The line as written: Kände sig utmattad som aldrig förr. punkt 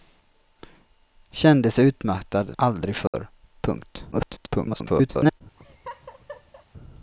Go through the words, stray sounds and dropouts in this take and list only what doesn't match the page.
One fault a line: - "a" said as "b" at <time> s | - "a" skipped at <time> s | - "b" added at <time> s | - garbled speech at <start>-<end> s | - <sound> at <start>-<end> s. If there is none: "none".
- "som" skipped at 2.6 s
- dropout at 3.1-3.1 s
- garbled speech at 4.1-5.4 s
- laugh at 5.6-6.7 s